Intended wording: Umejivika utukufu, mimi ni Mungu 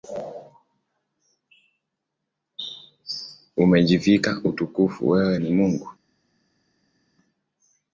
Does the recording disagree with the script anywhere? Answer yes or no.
yes